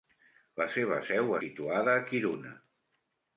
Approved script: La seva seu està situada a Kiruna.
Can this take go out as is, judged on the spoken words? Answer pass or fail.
fail